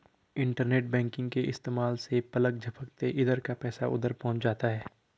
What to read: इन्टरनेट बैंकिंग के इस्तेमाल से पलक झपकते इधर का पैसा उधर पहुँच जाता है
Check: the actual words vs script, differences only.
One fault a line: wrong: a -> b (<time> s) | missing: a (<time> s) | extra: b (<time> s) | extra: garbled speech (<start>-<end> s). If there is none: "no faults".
no faults